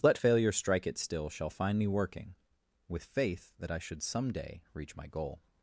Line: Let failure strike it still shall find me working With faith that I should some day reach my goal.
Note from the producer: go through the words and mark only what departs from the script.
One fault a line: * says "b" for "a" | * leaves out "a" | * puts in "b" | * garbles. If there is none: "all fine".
all fine